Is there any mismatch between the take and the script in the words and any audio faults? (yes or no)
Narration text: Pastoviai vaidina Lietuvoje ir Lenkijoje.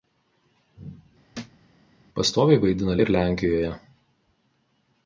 yes